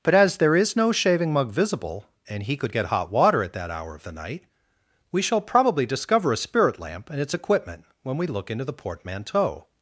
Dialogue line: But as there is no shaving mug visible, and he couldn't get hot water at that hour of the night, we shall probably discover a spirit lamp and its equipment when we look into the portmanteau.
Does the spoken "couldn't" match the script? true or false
false